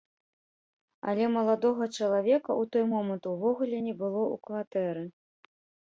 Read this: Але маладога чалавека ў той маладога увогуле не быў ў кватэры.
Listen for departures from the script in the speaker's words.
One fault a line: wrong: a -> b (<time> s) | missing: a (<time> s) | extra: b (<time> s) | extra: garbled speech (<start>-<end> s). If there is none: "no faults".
wrong: маладога -> момант (2.9 s)
wrong: быў -> было (4.0 s)